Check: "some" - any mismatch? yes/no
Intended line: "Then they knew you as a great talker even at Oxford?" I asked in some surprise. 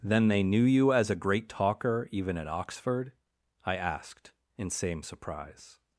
yes